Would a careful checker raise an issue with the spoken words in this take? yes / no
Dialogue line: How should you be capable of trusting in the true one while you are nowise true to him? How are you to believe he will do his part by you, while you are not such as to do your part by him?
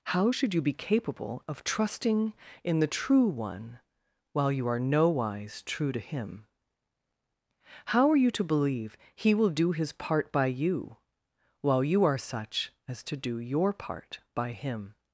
yes